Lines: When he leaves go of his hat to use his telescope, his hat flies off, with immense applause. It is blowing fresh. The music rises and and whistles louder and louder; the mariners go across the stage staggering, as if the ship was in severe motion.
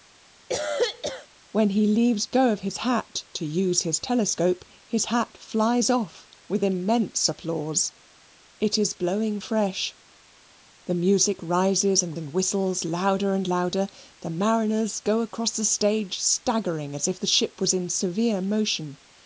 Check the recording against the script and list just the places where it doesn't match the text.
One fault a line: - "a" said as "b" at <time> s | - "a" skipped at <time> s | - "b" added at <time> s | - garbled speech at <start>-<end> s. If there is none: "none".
none